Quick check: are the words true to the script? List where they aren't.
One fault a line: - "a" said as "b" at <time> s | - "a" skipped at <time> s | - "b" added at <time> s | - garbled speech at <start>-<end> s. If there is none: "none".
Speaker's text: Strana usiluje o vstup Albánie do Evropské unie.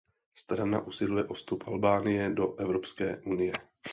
none